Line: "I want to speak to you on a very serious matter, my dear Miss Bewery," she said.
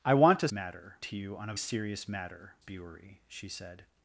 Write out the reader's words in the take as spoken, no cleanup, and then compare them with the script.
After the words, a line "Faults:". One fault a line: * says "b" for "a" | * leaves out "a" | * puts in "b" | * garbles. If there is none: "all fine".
"I want to matter to you on a serious matter, Bewery," she said.
Faults:
* says "matter" for "speak"
* leaves out "very"
* leaves out "my dear Miss"